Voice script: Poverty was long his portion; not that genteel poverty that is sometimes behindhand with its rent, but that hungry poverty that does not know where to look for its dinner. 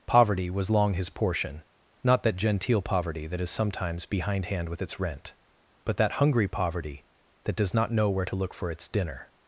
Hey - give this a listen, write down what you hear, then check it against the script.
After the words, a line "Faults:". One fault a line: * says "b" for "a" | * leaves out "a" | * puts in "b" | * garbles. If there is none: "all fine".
Poverty was long his portion; not that genteel poverty that is sometimes behindhand with its rent, but that hungry poverty that does not know where to look for its dinner.
Faults:
all fine